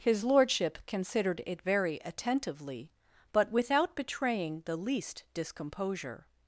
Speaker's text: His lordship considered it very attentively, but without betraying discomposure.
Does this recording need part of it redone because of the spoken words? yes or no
yes